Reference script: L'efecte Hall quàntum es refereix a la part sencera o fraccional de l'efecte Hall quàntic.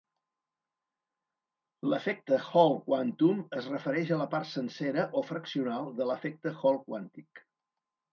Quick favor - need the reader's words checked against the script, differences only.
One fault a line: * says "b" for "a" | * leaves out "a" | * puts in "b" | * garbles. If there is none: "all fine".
all fine